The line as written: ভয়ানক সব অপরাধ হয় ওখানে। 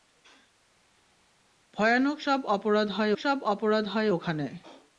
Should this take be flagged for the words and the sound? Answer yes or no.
yes